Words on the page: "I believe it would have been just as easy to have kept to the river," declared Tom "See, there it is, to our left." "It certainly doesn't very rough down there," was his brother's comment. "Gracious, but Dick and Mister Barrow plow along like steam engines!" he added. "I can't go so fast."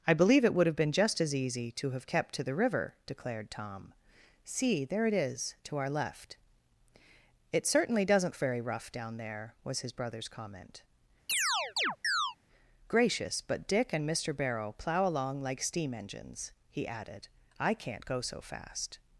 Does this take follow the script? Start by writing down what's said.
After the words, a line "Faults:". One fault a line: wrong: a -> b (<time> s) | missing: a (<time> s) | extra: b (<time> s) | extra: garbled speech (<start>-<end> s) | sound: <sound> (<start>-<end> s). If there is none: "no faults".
"I believe it would have been just as easy to have kept to the river," declared Tom "See, there it is, to our left." "It certainly doesn't very rough down there," was his brother's comment. "Gracious, but Dick and Mister Barrow plow along like steam engines!" he added. "I can't go so fast."
Faults:
sound: chirp (11.3-12.4 s)